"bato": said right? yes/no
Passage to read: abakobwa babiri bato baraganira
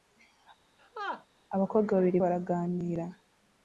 no